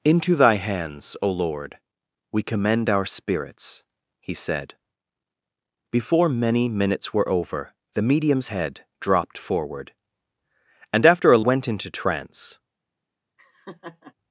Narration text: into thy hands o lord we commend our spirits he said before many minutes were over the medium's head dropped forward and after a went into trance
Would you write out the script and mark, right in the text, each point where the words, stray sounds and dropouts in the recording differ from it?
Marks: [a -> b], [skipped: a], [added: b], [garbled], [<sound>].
into thy hands o lord we commend our spirits he said before many minutes were over the medium's head dropped forward and after a went into trance [laugh]